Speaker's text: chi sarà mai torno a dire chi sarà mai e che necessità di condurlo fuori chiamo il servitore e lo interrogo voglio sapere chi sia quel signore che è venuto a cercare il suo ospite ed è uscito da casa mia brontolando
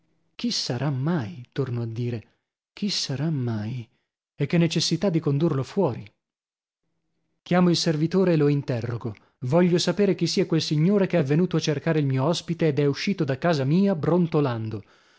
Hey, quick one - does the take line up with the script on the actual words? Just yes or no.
no